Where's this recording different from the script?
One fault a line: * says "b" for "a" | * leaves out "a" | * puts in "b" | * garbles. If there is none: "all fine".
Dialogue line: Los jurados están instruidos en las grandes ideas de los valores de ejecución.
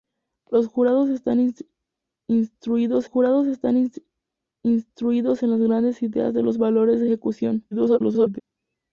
* puts in "jurados están instruidos"
* garbles